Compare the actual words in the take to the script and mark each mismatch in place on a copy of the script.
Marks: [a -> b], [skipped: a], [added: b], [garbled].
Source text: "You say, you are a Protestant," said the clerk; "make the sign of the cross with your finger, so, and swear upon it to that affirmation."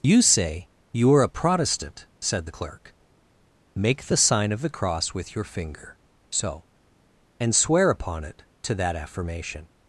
"You say, you are a Protestant," said the clerk; "make the sign of the cross with your finger, so, and swear upon it to that affirmation."